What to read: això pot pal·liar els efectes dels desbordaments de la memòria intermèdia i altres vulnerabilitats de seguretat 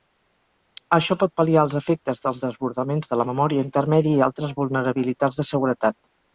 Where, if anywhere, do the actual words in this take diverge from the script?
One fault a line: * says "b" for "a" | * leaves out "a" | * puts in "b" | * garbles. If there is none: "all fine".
all fine